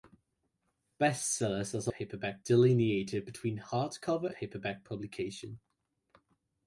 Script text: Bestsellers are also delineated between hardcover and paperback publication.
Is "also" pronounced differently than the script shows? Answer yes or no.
yes